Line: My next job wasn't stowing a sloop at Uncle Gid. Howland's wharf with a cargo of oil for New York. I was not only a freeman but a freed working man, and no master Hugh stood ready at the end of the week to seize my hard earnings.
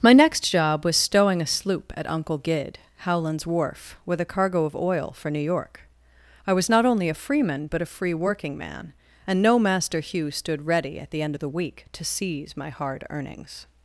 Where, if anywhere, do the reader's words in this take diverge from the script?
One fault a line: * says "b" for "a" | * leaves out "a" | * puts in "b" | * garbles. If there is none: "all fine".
* says "was" for "wasn't"
* says "free" for "freed"